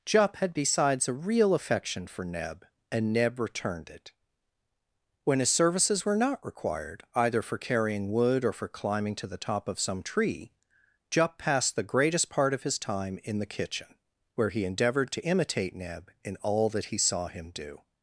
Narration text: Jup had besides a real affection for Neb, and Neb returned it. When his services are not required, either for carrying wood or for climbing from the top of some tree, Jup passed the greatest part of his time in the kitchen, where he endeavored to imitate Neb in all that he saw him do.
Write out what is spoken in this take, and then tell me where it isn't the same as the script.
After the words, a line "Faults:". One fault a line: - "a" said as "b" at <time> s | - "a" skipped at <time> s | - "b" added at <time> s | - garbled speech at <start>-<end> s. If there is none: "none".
Jup had besides a real affection for Neb, and Neb returned it. When his services were not required, either for carrying wood or for climbing to the top of some tree, Jup passed the greatest part of his time in the kitchen, where he endeavored to imitate Neb in all that he saw him do.
Faults:
- "are" said as "were" at 6.0 s
- "from" said as "to" at 9.2 s